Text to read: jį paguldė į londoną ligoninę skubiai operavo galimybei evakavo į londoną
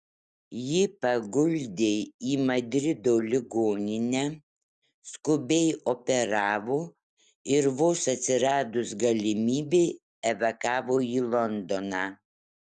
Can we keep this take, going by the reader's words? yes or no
no